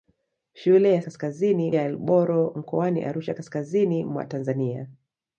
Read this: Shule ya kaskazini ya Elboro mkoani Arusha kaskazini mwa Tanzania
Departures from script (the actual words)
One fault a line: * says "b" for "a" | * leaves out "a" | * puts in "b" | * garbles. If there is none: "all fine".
all fine